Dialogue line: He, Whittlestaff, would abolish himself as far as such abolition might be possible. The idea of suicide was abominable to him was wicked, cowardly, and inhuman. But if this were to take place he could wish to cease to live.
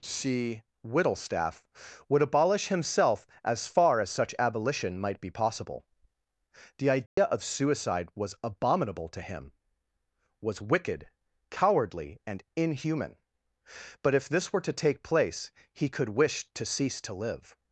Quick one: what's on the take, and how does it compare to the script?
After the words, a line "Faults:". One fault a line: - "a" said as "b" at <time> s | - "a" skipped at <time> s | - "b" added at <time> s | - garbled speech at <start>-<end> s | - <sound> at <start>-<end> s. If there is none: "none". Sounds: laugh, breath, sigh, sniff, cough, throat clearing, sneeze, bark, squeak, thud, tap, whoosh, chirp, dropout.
C, Whittlestaff, would abolish himself as far as such abolition might be possible. The idea of suicide was abominable to him was wicked, cowardly, and inhuman. But if this were to take place he could wish to cease to live.
Faults:
- "He" said as "C" at 0.0 s
- dropout at 7.1-7.2 s